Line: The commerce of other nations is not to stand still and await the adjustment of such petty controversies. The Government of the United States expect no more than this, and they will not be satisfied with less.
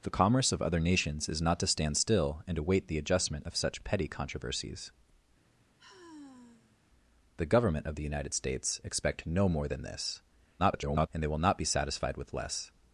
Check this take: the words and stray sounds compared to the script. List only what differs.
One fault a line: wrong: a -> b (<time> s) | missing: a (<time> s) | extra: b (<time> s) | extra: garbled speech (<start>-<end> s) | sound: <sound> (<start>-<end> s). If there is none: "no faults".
sound: sigh (5.5-6.8 s)
extra: garbled speech (10.6-11.1 s)